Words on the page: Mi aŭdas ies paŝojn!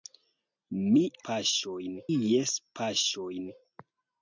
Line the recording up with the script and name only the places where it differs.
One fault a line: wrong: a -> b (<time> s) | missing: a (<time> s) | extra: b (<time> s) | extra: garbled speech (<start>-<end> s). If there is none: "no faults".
wrong: aŭdas -> paŝojn (1.3 s)